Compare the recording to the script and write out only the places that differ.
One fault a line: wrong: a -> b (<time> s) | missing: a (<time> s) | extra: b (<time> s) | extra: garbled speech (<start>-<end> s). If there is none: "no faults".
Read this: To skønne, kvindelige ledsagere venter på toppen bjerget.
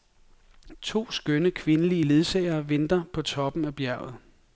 extra: af (3.7 s)